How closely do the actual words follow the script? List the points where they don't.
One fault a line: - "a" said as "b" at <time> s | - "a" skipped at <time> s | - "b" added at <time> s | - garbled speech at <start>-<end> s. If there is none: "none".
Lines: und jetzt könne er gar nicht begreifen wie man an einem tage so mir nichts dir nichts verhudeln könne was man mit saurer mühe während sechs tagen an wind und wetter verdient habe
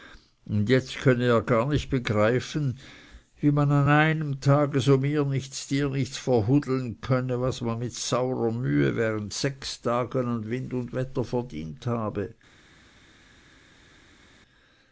none